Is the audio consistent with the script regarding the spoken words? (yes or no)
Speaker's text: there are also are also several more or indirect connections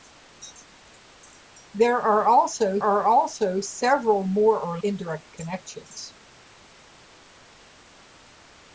yes